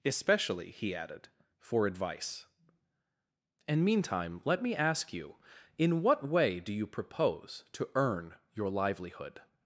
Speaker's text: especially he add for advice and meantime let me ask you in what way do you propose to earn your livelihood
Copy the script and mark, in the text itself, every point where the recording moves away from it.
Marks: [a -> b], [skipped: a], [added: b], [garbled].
especially he [add -> added] for advice and meantime let me ask you in what way do you propose to earn your livelihood